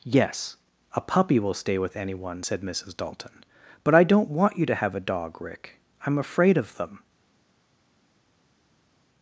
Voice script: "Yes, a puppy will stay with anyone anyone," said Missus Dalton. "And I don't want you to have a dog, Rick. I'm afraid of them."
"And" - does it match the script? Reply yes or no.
no